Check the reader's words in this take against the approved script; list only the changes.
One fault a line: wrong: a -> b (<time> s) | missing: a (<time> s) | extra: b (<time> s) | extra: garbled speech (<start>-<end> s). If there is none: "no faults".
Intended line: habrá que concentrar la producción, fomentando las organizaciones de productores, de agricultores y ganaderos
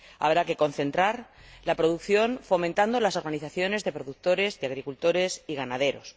no faults